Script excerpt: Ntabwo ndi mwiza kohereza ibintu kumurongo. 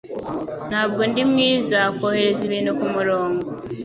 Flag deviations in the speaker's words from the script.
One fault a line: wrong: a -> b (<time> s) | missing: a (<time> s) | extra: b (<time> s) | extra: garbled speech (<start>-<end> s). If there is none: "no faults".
no faults